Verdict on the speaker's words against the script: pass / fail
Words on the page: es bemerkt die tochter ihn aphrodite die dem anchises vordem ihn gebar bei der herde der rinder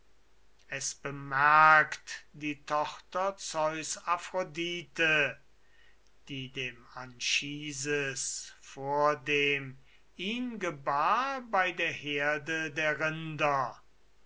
fail